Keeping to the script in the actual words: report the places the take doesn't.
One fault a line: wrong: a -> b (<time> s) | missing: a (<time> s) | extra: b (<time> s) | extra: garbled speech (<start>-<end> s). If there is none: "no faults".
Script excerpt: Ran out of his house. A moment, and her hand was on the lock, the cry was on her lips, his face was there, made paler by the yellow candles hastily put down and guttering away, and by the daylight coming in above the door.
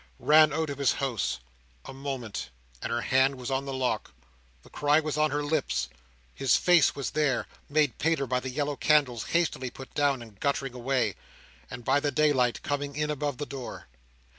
no faults